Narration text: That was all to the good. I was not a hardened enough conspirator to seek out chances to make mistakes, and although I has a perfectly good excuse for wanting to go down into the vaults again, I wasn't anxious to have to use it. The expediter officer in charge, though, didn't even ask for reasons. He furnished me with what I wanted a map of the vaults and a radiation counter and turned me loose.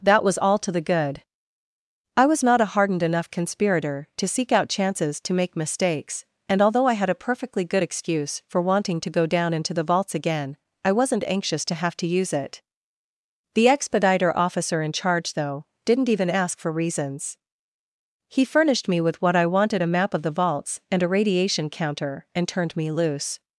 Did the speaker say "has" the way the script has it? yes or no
no